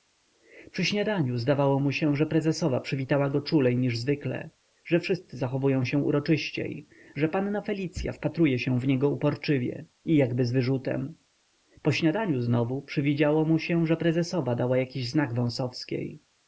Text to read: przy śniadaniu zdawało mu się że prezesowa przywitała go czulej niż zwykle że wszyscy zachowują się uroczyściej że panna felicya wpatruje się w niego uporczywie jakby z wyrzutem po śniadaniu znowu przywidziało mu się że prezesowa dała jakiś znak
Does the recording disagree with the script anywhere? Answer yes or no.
yes